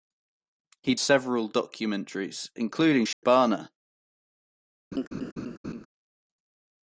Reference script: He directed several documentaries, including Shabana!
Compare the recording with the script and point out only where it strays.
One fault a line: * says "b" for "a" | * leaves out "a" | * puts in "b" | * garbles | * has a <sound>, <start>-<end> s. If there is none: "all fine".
* leaves out "directed"
* has a dropout, 3.1-3.2 s
* has a laugh, 4.9-5.9 s